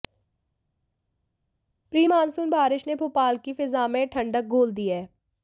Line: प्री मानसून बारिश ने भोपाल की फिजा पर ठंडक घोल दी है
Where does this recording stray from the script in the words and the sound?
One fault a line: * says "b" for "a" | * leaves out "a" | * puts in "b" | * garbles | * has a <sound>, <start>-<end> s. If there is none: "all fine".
* says "में" for "पर"